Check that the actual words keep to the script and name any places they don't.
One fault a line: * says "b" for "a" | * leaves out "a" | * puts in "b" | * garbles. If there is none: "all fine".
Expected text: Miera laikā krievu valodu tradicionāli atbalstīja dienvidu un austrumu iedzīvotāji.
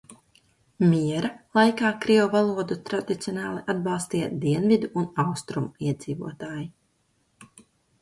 all fine